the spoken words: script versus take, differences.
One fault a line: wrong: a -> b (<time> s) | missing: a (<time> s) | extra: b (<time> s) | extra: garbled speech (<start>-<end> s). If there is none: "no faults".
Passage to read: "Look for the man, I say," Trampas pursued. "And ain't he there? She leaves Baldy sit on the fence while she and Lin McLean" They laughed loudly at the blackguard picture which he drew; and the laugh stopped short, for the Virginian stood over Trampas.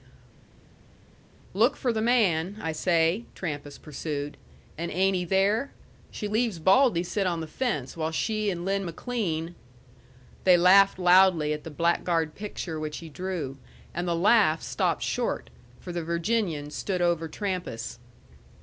no faults